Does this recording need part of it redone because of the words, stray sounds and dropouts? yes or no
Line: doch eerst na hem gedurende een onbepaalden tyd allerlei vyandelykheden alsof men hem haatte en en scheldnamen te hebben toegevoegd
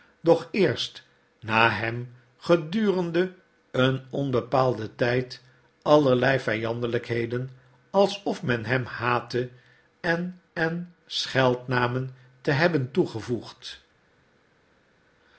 no